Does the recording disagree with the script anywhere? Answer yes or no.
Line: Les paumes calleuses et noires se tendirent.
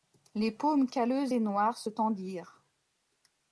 no